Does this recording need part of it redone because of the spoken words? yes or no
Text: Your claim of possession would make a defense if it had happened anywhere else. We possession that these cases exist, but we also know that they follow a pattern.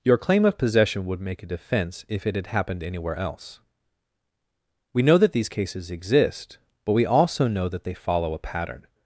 yes